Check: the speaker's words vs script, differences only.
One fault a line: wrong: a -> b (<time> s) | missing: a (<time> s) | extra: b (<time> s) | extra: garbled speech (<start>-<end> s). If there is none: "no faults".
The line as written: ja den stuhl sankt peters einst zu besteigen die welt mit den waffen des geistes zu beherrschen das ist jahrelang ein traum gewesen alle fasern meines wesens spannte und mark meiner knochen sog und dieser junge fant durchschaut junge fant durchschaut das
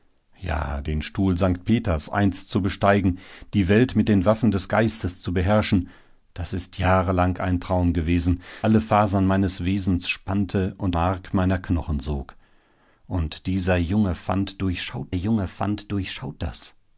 no faults